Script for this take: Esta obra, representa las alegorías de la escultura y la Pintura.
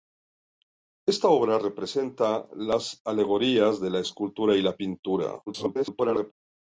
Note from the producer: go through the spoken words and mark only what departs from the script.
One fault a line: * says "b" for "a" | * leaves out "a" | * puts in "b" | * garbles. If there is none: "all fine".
* garbles